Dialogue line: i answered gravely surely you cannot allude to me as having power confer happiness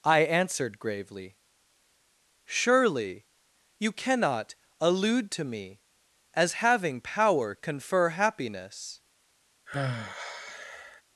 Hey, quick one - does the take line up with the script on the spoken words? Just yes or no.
yes